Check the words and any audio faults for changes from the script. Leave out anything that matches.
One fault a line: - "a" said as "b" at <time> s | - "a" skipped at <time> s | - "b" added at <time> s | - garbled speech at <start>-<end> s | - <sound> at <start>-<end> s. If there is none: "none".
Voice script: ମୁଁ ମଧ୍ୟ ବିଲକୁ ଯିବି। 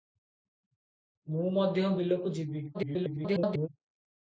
- garbled speech at 2.7-3.7 s